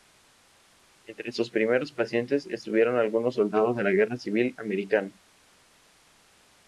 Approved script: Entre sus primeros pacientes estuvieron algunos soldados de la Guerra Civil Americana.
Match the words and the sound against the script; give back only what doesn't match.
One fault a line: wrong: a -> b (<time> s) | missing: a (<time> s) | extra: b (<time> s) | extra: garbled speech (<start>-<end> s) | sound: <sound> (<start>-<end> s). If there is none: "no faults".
no faults